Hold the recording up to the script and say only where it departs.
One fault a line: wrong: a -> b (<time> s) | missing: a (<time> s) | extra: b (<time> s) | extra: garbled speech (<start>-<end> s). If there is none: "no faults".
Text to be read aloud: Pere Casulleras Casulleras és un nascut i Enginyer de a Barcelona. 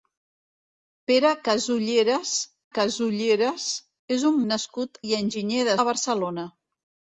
no faults